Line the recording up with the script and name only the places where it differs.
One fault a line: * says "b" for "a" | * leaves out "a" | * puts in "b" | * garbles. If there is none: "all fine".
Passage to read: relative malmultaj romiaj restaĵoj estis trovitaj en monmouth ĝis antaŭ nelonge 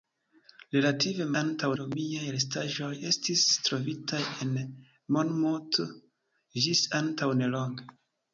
* says "antaŭ" for "malmultaj"